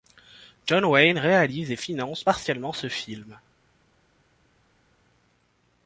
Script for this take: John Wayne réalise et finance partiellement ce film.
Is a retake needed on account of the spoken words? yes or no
no